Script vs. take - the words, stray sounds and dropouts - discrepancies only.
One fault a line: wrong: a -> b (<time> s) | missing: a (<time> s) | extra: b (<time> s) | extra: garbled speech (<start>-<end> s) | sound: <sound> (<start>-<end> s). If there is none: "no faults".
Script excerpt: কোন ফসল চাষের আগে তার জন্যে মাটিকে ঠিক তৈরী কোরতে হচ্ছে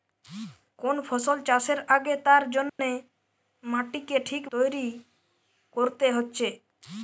sound: dropout (2.7-2.8 s)